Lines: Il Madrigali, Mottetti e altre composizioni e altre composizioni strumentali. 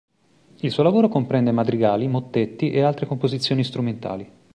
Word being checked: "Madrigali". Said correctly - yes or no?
no